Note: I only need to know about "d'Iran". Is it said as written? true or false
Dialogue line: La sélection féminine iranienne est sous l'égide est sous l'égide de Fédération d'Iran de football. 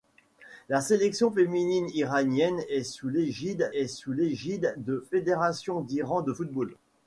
true